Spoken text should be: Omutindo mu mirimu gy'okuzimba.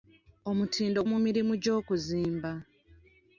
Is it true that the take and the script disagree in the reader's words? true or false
false